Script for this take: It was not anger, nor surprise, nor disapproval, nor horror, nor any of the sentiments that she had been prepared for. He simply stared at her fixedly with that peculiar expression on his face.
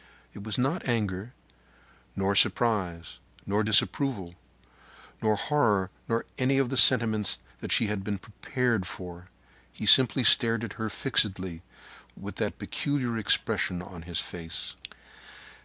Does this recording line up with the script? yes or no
yes